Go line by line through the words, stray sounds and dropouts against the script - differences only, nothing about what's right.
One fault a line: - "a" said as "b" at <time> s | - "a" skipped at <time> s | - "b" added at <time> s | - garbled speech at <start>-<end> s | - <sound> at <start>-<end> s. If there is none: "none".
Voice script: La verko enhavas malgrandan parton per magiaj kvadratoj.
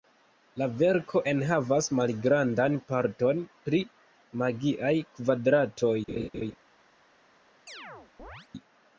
- "per" said as "pri" at 3.7 s
- laugh at 6.1-6.6 s
- chirp at 7.7-8.5 s